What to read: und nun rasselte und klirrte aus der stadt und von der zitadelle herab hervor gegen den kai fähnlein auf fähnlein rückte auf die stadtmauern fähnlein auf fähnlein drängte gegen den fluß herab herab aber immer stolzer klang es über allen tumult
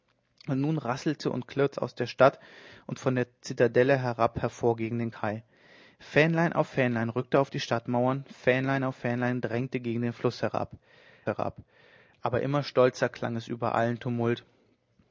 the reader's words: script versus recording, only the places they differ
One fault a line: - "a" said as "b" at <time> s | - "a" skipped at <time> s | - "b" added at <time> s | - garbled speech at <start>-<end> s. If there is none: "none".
none